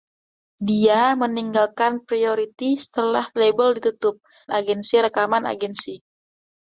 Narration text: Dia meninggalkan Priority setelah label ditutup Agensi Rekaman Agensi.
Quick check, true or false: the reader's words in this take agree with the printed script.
true